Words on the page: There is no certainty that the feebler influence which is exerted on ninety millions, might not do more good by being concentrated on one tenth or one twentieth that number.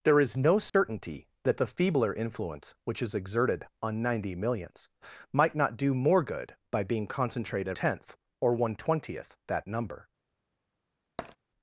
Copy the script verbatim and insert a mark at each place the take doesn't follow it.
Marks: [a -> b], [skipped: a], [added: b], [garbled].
There is no certainty that the feebler influence which is exerted on ninety millions, might not do more good by being concentrated [skipped: on one] tenth or one twentieth that number.